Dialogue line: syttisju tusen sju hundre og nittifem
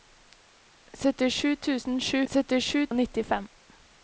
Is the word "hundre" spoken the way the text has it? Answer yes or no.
no